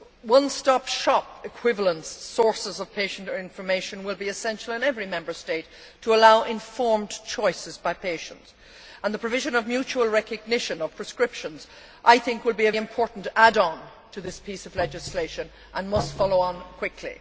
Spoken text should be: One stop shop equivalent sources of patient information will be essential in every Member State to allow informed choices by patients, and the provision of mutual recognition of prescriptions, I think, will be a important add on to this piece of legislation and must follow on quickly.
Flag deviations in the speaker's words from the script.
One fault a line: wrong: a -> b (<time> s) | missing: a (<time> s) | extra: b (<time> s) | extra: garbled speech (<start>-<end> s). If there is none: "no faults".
no faults